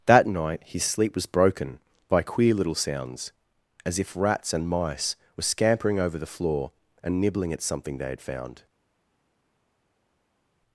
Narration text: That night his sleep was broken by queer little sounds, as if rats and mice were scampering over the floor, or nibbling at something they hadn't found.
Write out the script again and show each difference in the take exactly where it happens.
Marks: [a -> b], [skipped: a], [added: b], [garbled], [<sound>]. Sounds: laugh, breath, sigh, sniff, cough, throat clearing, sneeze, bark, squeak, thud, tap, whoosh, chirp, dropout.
That night his sleep was broken by queer little sounds, as if rats and mice were scampering over the floor, [or -> and] nibbling at something they [hadn't -> had] found.